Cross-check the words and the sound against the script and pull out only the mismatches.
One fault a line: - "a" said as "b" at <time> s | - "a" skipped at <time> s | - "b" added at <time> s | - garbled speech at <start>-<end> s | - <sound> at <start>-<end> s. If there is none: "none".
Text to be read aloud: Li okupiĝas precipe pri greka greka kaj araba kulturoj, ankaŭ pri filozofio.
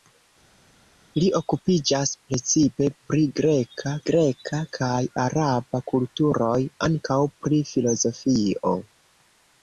none